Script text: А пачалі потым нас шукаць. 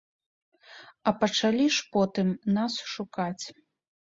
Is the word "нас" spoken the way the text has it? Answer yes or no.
yes